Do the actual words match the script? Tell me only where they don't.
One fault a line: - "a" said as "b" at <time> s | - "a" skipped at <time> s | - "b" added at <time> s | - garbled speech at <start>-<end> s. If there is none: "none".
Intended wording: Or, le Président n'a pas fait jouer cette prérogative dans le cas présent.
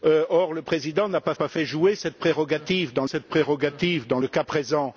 - "pas" added at 1.3 s
- "cette prérogative dans" added at 3.0 s